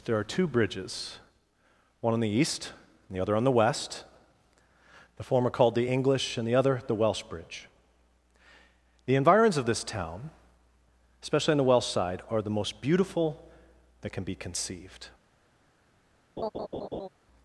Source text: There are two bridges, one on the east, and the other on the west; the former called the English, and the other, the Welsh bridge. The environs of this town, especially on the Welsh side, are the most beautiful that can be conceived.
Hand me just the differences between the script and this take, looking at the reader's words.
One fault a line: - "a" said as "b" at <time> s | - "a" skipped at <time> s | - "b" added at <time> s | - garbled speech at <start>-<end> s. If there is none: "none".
none